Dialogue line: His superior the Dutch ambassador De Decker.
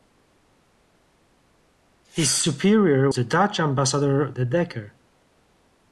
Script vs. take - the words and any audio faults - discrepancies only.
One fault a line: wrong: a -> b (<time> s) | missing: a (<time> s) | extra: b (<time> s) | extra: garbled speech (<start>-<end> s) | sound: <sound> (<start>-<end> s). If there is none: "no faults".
no faults